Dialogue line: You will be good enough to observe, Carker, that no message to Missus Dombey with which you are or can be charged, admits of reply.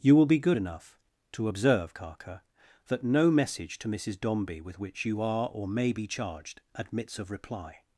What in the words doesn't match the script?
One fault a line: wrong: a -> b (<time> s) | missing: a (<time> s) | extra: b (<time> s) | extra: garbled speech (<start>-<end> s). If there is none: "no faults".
wrong: can -> may (5.7 s)